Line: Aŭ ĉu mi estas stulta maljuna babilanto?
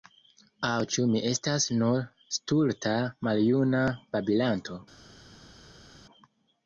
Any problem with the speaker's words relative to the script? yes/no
yes